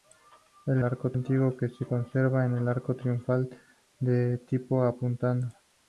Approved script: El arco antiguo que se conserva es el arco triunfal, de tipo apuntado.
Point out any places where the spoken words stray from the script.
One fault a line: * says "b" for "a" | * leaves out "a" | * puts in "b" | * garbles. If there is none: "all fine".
all fine